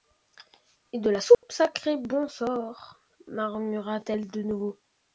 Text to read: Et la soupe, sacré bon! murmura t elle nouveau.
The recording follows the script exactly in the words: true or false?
false